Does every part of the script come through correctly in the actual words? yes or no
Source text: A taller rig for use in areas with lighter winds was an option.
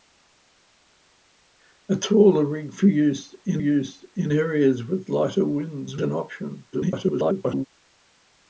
no